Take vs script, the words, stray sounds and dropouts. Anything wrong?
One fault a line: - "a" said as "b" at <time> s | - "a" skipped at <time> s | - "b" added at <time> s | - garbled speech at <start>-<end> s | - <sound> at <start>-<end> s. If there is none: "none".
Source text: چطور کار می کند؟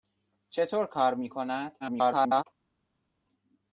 - garbled speech at 1.8-2.4 s